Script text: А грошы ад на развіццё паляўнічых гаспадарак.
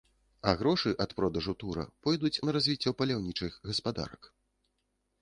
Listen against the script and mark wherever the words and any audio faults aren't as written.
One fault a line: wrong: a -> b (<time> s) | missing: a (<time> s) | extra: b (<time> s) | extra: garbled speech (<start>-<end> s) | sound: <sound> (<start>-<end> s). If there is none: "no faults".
extra: продажу тура пойдуць (1.2 s)